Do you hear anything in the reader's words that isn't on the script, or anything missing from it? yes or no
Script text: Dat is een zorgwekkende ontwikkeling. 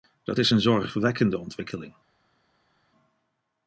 no